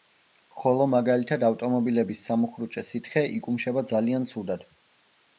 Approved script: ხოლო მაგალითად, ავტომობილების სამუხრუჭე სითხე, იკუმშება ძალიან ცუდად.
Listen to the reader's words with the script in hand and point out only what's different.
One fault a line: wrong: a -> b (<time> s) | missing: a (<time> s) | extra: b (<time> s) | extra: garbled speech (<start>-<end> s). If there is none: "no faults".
no faults